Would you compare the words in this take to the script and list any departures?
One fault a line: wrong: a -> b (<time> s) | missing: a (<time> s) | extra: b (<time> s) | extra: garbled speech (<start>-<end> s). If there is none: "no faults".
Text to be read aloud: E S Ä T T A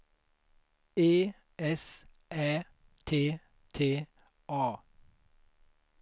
no faults